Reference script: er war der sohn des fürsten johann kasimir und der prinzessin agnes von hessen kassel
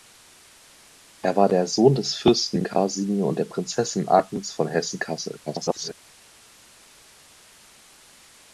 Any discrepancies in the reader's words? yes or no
yes